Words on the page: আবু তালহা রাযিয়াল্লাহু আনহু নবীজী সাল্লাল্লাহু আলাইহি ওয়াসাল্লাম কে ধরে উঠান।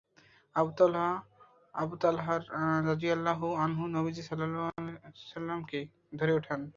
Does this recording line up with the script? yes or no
yes